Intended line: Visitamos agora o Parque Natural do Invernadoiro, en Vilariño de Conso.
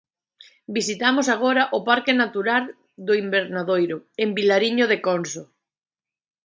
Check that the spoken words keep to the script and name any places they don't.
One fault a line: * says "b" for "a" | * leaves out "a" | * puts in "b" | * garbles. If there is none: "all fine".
all fine